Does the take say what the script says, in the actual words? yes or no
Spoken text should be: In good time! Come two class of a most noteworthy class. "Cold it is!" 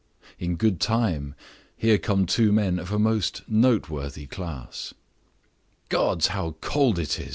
no